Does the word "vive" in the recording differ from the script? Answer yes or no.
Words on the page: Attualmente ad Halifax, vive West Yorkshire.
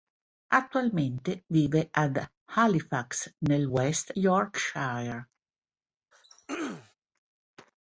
yes